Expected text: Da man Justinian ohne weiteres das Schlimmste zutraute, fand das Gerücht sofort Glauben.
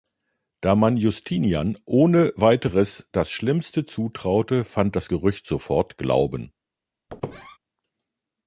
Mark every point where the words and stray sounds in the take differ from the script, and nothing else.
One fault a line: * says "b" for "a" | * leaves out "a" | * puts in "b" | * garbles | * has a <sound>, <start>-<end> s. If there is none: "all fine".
* has a squeak, 7.1-7.6 s